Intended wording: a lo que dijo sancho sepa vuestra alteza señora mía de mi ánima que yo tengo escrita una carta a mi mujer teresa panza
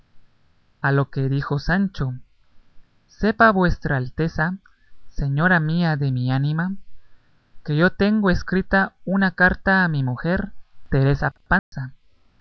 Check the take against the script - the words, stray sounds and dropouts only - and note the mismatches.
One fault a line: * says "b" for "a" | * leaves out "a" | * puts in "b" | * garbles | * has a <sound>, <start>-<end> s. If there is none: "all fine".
* has a dropout, 11.6-11.7 s